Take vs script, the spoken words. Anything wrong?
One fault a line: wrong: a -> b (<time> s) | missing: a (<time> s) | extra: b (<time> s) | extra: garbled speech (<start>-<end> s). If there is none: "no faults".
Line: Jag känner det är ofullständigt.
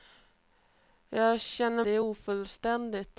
no faults